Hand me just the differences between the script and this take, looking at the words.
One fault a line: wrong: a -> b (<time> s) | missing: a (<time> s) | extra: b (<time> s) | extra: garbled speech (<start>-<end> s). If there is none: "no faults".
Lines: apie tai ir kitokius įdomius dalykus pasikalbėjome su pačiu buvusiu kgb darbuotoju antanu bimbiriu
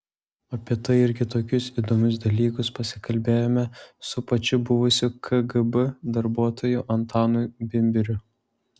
no faults